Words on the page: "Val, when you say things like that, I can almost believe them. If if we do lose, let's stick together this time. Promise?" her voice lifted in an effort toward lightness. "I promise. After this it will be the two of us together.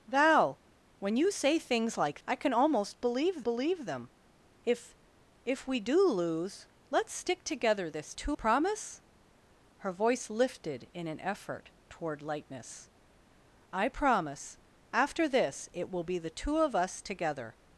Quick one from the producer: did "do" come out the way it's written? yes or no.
yes